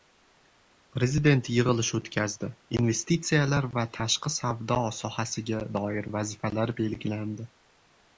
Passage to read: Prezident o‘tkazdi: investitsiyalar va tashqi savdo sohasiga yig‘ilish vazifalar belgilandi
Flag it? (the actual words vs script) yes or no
yes